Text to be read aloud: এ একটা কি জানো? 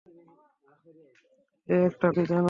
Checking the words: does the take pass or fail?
pass